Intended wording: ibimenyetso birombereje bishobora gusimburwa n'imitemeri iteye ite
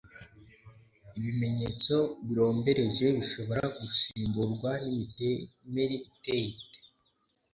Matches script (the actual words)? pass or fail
pass